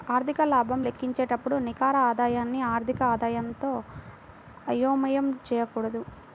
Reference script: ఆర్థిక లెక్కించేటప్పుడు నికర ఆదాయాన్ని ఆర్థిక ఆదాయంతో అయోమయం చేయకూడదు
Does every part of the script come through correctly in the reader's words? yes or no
no